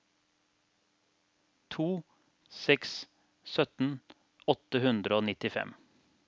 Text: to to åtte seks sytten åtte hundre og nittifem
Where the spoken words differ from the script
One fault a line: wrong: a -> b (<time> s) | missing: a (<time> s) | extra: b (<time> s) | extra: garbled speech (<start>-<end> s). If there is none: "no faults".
missing: to åtte (2.0 s)